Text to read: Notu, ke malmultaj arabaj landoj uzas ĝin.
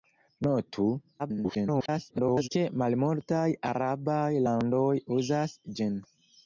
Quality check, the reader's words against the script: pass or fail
fail